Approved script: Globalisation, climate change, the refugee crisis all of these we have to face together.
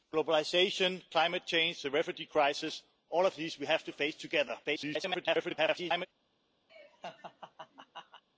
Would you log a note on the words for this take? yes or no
yes